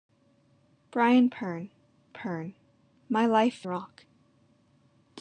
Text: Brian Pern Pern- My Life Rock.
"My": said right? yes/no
yes